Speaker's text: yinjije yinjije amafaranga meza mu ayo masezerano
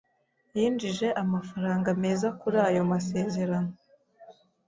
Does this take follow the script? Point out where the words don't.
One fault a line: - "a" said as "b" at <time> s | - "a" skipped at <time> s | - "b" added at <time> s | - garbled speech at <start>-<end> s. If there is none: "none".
- "yinjije" skipped at 1.1 s
- "mu" said as "kuri" at 2.4 s